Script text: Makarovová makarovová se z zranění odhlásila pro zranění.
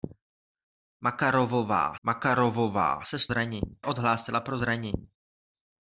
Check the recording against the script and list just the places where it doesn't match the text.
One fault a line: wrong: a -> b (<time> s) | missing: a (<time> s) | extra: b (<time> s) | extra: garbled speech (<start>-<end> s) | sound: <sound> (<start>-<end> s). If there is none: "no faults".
no faults